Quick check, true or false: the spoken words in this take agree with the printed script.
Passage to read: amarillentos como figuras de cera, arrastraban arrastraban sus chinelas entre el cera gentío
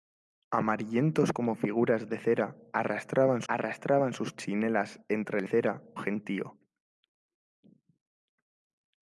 true